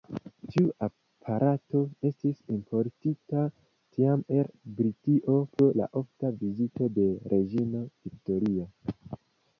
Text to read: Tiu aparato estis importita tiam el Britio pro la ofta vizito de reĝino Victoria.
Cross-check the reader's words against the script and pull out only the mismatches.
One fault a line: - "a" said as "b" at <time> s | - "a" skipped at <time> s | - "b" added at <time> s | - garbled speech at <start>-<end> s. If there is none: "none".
none